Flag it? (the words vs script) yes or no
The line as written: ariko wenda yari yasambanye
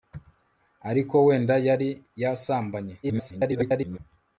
yes